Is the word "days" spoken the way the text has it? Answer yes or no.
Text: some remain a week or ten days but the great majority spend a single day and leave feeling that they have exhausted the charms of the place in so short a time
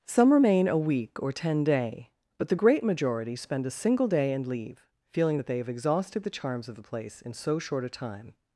no